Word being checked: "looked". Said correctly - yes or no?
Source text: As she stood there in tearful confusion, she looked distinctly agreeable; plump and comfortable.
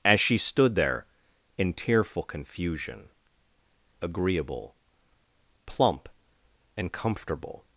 no